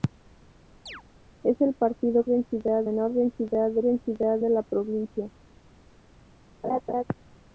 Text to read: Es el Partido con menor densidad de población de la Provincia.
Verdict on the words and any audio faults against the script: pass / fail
fail